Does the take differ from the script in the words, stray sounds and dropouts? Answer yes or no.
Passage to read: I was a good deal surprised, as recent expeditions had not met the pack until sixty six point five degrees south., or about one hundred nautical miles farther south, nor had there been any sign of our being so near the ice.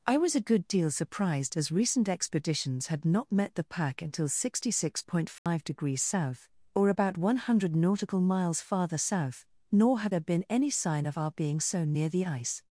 yes